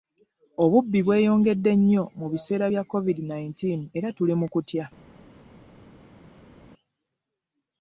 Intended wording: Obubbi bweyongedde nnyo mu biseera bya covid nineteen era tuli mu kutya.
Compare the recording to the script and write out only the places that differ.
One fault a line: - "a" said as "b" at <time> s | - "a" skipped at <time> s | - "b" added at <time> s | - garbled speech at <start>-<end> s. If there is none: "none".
none